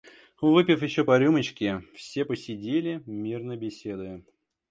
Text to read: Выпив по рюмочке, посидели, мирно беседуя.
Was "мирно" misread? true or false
false